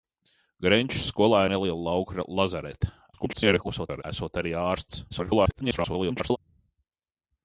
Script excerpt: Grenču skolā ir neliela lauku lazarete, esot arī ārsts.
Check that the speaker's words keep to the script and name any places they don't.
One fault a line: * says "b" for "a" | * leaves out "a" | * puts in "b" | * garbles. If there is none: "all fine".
* leaves out "ir"
* garbles
* garbles